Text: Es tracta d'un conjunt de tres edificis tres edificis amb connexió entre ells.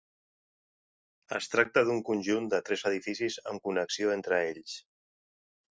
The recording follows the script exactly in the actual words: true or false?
false